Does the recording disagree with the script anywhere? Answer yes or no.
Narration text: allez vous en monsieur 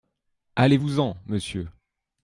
no